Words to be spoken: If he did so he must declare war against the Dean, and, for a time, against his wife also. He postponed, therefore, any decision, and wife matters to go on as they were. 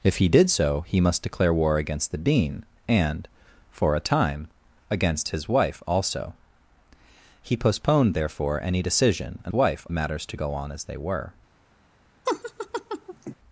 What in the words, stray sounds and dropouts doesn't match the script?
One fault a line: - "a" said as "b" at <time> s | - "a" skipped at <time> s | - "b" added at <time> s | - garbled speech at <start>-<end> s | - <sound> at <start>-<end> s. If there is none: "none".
- laugh at 12.3-13.4 s